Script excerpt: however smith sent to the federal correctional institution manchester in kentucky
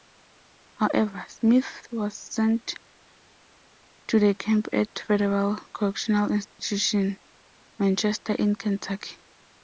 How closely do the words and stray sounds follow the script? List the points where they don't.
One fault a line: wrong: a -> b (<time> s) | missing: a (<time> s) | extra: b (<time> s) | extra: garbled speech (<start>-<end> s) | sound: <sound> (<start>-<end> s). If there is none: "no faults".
extra: was (1.9 s)
extra: camp at (4.3 s)
sound: dropout (6.5-6.6 s)